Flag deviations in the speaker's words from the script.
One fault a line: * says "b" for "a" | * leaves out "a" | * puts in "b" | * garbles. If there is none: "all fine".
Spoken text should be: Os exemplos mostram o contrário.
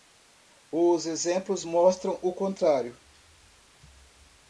all fine